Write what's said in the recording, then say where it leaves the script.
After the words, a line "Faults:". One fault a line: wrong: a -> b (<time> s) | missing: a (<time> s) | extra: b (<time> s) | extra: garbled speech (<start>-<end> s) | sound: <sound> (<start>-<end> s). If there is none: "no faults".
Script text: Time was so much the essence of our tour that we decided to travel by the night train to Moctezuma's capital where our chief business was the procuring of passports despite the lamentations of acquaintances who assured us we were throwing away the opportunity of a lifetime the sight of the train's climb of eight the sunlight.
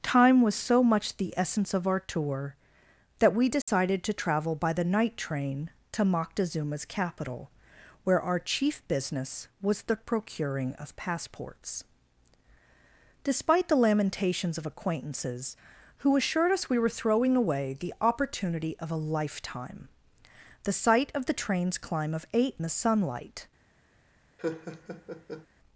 Time was so much the essence of our tour that we decided to travel by the night train to Moctezuma's capital where our chief business was the procuring of passports despite the lamentations of acquaintances who assured us we were throwing away the opportunity of a lifetime the sight of the train's climb of eight the sunlight.
Faults:
sound: dropout (3.6-3.7 s)
sound: laugh (24.4-25.5 s)